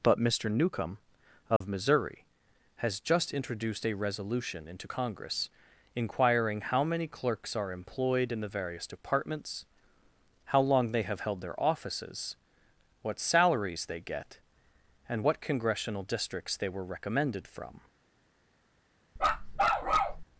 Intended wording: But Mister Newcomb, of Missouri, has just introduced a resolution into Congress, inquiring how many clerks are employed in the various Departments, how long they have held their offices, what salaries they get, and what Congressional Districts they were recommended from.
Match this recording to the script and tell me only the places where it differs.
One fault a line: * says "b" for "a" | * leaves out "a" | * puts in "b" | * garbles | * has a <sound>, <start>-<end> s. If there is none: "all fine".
* has a dropout, 1.6-1.6 s
* has a bark, 19.2-20.2 s